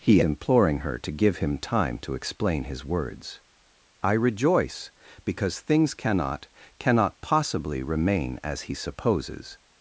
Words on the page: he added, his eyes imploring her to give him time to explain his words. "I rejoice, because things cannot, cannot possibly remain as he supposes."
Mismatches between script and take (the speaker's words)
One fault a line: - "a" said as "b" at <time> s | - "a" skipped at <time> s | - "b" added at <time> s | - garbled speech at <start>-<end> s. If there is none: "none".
- "added his eyes" skipped at 0.2 s